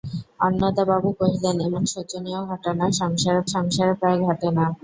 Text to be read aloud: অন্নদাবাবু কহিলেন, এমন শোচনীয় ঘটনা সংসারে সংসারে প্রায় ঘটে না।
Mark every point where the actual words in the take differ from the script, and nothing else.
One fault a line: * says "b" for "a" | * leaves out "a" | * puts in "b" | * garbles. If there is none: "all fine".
all fine